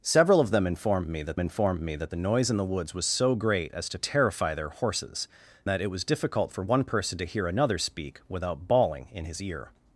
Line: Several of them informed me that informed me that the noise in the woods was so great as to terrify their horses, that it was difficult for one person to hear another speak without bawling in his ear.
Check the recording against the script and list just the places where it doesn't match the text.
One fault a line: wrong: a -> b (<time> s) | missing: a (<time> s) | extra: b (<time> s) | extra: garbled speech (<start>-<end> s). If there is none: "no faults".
no faults